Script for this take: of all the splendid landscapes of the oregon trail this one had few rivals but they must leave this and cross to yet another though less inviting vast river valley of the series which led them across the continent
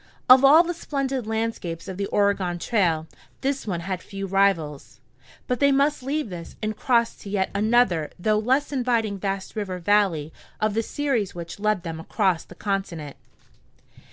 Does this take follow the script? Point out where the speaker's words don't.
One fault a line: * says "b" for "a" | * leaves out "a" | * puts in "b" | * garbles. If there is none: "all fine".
all fine